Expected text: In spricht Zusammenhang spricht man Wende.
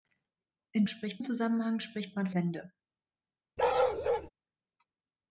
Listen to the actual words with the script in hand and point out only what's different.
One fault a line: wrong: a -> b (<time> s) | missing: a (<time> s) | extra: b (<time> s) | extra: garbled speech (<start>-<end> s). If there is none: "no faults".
no faults